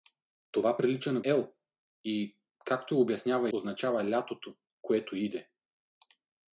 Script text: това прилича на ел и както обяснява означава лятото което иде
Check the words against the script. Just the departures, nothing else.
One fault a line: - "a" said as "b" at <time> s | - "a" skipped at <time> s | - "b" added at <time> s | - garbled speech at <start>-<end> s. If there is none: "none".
none